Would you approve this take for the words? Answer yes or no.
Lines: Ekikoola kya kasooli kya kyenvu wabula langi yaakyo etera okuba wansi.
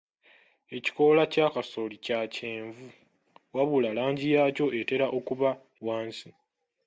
yes